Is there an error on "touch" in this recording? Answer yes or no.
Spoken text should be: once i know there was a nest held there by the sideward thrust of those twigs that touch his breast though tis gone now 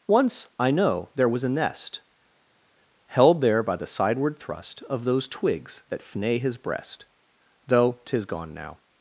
yes